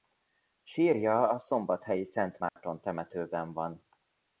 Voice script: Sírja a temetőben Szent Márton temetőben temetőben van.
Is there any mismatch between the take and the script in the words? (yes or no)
yes